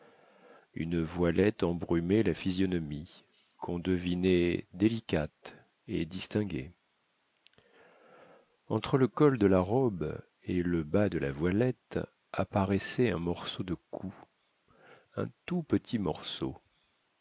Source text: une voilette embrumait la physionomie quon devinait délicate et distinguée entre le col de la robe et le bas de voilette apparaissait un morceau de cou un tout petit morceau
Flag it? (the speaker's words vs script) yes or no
yes